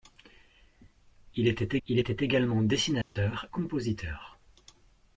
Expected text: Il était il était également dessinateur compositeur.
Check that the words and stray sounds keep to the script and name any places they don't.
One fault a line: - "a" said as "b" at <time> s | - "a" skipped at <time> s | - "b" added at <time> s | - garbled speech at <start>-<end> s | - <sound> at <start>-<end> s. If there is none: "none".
- dropout at 3.0-3.2 s